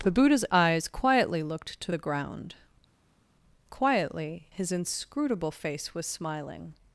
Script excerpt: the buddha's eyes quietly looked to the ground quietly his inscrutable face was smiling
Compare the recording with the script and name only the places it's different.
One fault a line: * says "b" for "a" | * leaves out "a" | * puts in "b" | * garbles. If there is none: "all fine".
all fine